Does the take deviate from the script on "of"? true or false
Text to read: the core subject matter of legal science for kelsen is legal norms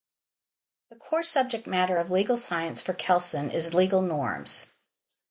false